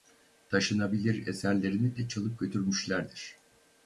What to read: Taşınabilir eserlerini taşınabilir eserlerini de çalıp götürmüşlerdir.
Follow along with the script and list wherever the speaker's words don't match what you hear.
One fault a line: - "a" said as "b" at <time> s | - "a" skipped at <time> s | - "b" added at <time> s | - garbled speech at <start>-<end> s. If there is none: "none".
- "taşınabilir eserlerini" skipped at 2.0 s